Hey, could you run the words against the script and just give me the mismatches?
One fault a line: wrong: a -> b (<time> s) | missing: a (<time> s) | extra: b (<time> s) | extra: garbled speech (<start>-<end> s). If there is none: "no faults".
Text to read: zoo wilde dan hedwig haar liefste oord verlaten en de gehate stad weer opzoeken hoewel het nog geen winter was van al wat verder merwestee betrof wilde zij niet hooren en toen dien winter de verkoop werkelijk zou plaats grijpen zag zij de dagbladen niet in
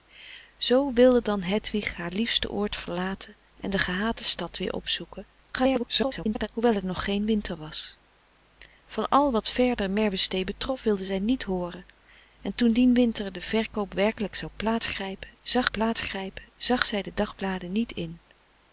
extra: garbled speech (5.5-6.5 s)
extra: plaats grijpen zag (15.7 s)